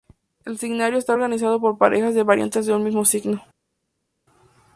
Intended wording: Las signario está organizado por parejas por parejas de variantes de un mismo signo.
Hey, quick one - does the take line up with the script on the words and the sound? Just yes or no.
no